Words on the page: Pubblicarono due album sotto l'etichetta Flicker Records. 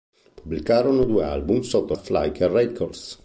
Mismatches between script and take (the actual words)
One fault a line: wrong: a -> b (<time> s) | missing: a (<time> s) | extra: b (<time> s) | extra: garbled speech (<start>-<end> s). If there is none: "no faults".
missing: l'etichetta (1.9 s)